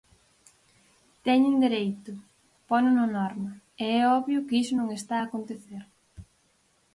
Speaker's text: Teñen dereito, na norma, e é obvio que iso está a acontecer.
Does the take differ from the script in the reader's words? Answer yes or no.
yes